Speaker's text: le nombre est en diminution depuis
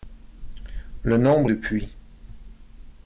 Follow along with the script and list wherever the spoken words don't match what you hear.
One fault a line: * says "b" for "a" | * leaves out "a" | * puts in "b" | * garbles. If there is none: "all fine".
* leaves out "est en diminution"